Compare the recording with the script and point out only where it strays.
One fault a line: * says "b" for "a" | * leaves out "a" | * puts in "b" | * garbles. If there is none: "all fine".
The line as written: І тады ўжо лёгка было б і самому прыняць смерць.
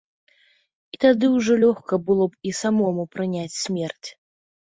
all fine